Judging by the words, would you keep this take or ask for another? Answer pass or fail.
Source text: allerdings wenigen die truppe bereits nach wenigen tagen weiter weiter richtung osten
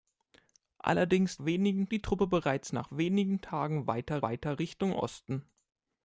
pass